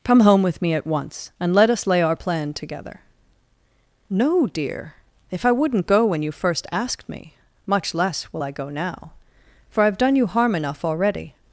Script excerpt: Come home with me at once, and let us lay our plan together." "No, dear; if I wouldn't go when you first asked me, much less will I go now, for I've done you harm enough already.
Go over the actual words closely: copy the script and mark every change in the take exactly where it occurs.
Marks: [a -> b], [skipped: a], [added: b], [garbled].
Come home with me at once, and let us lay our plan together." "No, dear; if I wouldn't go when you first asked me, much less will I go now, for I've done you harm enough already.